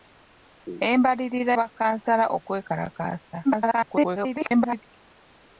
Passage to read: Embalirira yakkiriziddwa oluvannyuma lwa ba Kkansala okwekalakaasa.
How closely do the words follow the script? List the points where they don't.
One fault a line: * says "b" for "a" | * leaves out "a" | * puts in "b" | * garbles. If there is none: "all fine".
* leaves out "yakkiriziddwa oluvannyuma lwa"
* garbles